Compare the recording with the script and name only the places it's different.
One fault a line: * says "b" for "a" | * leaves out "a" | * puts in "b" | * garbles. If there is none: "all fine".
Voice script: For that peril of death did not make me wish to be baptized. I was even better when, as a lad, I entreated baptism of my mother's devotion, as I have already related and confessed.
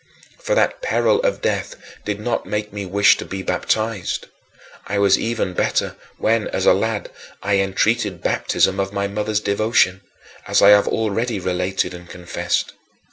all fine